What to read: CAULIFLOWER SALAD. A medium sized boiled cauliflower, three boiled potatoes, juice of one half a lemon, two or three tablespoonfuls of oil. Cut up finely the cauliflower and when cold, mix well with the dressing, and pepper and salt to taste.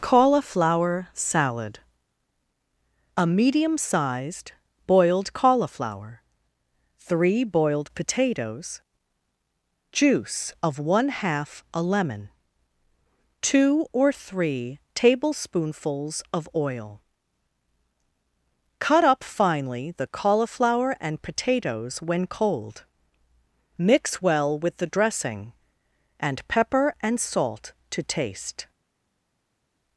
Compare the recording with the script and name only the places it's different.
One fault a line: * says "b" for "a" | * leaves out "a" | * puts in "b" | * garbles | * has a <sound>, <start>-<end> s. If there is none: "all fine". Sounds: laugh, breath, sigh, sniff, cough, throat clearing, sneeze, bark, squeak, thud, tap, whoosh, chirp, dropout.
* puts in "potatoes"